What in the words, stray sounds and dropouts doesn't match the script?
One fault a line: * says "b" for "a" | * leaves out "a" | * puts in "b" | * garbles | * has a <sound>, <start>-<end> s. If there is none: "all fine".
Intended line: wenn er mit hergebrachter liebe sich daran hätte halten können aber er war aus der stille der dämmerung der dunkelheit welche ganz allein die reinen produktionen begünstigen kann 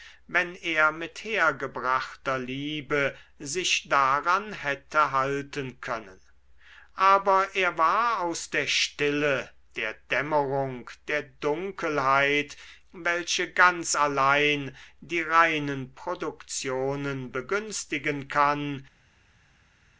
all fine